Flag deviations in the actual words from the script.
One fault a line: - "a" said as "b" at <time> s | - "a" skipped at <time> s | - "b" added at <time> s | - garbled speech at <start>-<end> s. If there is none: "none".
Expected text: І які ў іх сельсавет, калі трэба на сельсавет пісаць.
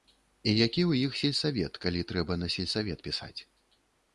none